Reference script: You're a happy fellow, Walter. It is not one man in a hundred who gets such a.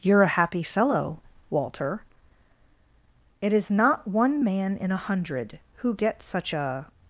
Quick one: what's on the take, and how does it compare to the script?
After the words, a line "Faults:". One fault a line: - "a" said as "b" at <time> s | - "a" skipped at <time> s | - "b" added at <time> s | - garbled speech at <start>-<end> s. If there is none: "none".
You're a happy fellow, Walter. It is not one man in a hundred who gets such a.
Faults:
none